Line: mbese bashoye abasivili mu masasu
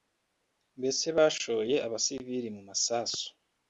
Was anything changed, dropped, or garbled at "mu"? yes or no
no